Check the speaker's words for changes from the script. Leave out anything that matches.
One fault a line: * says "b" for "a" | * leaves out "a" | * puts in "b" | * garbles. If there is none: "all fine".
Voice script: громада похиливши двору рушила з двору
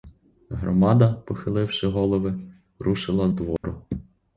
* says "голови" for "двору"